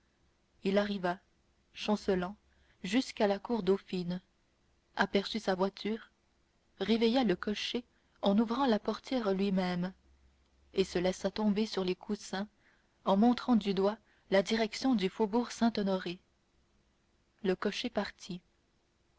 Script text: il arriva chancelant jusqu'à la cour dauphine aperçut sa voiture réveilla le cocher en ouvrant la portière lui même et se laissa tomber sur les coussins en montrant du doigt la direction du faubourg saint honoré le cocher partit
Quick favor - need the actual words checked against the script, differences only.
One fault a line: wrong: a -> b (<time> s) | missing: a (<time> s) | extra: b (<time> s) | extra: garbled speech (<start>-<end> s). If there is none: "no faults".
no faults